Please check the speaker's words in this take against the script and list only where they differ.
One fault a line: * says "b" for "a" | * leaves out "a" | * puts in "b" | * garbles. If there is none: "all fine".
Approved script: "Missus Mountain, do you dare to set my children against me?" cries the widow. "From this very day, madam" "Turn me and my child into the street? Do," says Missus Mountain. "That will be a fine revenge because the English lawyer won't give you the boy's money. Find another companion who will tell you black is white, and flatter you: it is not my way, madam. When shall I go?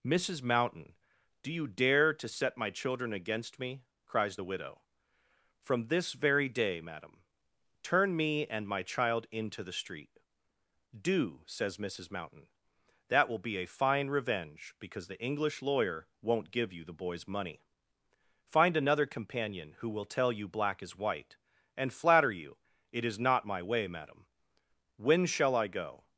all fine